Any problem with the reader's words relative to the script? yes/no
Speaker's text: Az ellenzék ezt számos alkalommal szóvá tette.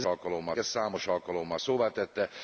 yes